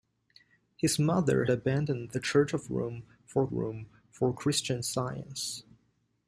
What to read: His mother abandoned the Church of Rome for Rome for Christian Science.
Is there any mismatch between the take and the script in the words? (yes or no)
no